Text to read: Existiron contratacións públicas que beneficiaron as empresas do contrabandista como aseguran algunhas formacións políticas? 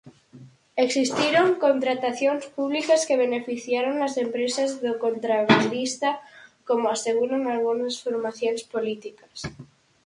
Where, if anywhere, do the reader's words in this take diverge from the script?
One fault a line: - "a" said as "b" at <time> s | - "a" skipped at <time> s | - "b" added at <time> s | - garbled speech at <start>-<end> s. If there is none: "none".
none